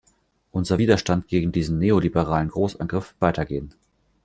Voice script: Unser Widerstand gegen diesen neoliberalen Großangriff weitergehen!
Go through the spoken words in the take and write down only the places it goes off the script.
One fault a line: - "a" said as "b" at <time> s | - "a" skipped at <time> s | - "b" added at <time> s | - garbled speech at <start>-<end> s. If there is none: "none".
none